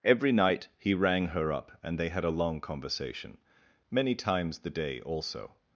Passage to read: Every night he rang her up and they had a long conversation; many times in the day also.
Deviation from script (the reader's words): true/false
true